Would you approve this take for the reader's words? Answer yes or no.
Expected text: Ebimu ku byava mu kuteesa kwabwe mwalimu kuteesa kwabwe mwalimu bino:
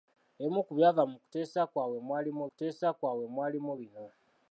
yes